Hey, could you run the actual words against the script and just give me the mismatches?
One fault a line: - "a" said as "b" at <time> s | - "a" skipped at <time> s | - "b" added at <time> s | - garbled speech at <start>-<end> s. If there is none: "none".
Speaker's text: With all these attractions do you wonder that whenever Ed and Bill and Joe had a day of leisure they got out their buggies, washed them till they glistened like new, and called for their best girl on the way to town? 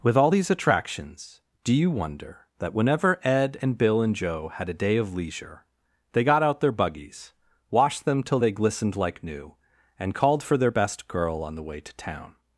none